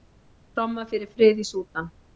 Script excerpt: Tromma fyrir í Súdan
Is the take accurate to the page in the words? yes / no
no